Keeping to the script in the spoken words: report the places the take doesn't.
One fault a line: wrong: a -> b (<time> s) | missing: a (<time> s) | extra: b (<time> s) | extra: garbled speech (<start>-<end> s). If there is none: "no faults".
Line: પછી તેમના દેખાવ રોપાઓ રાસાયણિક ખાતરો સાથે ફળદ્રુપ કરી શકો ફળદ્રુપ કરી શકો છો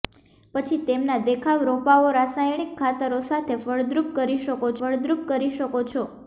no faults